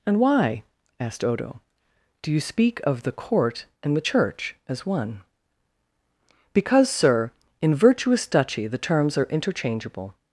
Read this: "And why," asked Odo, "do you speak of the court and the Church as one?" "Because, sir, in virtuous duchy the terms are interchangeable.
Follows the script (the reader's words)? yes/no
yes